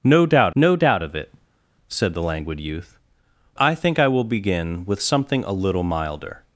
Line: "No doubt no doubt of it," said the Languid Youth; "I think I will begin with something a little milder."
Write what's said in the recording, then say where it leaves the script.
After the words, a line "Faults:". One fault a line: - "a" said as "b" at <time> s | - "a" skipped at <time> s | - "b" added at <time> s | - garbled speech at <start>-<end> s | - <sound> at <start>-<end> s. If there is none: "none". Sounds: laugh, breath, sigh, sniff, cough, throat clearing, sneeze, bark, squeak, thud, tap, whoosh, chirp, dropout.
"No doubt no doubt of it," said the Languid Youth; "I think I will begin with something a little milder."
Faults:
none